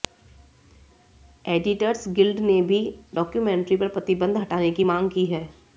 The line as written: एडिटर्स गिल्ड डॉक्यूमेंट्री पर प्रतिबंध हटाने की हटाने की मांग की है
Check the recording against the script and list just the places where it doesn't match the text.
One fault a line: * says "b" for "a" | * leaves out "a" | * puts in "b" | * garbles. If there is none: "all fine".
* puts in "ने भी"
* leaves out "हटाने की"